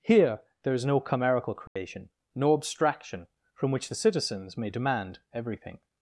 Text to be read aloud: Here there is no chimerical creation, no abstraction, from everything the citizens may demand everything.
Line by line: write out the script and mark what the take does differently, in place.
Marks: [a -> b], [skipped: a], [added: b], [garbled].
Here there is no chimerical creation, no abstraction, from [everything -> which] the citizens may demand everything.